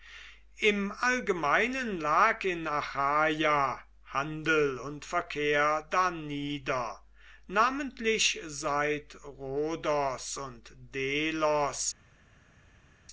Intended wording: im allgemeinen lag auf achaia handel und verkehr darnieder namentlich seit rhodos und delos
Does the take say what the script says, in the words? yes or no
no